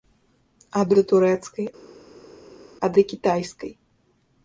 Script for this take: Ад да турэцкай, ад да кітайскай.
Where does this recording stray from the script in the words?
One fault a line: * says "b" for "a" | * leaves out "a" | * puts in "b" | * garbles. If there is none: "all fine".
all fine